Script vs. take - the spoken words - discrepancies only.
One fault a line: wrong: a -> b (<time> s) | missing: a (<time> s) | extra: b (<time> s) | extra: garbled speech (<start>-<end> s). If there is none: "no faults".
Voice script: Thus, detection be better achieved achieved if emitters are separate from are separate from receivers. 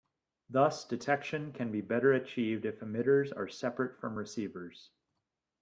extra: can (1.5 s)
missing: achieved (2.6 s)
missing: are separate from (4.2 s)